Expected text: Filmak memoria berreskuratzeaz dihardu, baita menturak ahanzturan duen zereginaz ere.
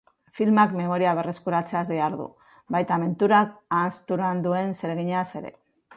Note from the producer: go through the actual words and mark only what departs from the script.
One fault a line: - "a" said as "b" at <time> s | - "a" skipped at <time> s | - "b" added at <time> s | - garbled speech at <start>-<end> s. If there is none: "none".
none